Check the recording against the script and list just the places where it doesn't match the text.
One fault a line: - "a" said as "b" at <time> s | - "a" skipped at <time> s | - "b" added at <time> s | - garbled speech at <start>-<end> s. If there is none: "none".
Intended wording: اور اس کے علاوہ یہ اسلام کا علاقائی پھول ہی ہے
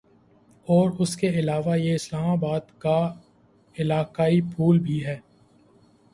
- "آباد" added at 2.3 s
- "ہی" said as "بھی" at 4.8 s